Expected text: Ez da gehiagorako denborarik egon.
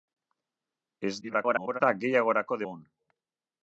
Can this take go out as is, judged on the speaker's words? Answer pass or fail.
fail